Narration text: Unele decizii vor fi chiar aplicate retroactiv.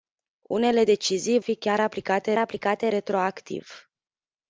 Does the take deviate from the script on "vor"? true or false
true